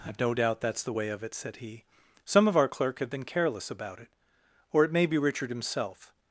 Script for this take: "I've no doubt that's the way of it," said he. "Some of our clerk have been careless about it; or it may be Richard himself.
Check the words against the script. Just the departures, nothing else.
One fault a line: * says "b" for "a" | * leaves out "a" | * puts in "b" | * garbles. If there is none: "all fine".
all fine